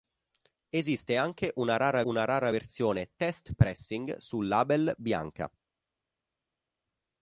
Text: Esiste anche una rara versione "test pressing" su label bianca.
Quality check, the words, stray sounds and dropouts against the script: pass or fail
fail